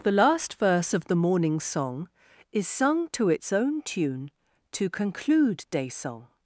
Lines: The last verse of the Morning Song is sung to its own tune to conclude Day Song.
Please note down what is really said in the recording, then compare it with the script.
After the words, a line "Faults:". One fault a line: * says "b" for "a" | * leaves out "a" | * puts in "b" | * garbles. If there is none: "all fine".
The last verse of the Morning Song is sung to its own tune to conclude Day Song.
Faults:
all fine